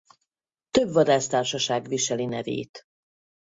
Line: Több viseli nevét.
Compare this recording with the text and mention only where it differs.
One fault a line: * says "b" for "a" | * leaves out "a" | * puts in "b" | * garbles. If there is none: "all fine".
* puts in "vadásztársaság"